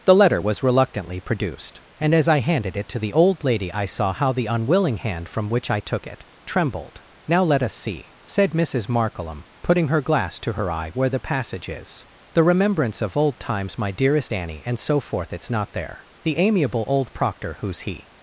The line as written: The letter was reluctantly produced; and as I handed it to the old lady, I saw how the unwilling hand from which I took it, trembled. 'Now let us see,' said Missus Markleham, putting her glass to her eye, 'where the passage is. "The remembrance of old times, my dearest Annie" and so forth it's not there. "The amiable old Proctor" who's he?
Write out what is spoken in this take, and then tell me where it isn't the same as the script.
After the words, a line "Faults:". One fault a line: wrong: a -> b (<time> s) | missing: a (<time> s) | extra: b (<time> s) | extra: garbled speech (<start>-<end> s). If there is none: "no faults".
The letter was reluctantly produced; and as I handed it to the old lady, I saw how the unwilling hand from which I took it, trembled. 'Now let us see,' said Missus Markleham, putting her glass to her eye, 'where the passage is. "The remembrance of old times, my dearest Annie" and so forth it's not there. "The amiable old Proctor" who's he?
Faults:
no faults